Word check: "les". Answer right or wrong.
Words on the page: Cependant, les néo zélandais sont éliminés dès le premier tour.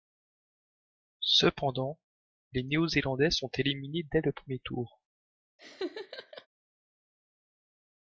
right